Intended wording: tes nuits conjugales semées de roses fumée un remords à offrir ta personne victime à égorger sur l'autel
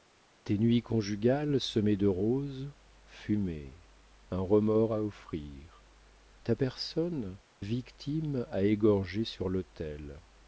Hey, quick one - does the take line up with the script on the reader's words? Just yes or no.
yes